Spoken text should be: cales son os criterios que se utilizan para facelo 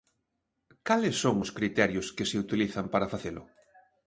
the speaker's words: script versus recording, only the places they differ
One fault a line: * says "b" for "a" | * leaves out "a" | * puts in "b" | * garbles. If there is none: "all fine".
all fine